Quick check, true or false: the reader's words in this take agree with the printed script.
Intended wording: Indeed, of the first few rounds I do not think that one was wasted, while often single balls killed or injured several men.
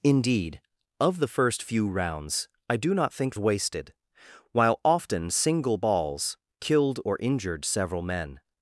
false